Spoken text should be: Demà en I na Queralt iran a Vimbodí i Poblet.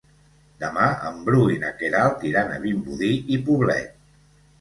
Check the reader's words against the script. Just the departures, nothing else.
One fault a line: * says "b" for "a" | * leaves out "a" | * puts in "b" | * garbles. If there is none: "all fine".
* puts in "Bru"